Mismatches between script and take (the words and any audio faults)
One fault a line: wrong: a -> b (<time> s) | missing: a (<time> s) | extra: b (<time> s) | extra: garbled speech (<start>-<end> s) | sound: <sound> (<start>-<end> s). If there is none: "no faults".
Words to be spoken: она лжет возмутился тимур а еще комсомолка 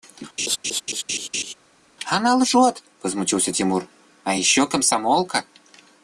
sound: laugh (0.4-1.5 s)